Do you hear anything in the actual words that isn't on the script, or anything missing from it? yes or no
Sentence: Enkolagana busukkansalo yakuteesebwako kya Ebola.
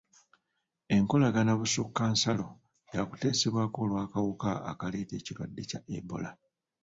yes